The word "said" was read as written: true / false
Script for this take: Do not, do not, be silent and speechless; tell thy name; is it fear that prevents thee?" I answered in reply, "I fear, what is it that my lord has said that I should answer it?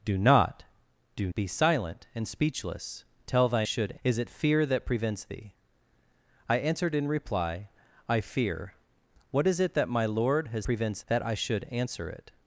false